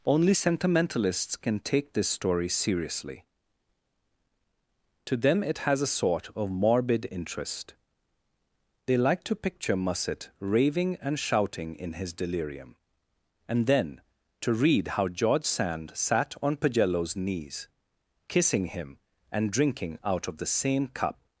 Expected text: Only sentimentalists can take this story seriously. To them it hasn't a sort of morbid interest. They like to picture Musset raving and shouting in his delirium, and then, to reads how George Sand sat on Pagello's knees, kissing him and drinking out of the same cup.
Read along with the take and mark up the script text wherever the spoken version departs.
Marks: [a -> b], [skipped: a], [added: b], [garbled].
Only sentimentalists can take this story seriously. To them it [hasn't -> has] a sort of morbid interest. They like to picture Musset raving and shouting in his delirium, and then, to [reads -> read] how George Sand sat on Pagello's knees, kissing him and drinking out of the same cup.